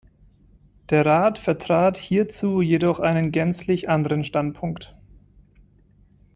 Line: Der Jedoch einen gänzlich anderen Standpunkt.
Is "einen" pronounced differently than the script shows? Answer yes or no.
no